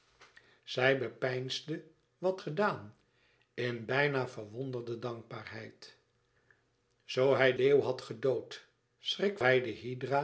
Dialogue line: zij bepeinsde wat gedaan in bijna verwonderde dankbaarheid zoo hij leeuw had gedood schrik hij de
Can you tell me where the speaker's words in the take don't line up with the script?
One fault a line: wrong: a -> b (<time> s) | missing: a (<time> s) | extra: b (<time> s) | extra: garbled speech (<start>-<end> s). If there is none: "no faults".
no faults